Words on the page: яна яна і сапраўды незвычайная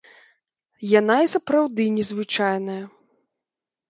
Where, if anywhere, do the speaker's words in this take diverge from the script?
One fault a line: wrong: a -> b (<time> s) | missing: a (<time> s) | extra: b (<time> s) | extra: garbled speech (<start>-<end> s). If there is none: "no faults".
missing: яна (1.2 s)